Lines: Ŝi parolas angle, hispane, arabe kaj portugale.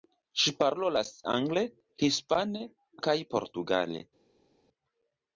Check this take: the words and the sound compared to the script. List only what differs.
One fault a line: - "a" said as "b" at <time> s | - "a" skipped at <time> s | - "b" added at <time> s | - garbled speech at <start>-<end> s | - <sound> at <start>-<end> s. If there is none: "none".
- "arabe" skipped at 2.6 s